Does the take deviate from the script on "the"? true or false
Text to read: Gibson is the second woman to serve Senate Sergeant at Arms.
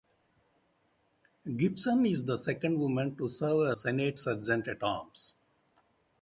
false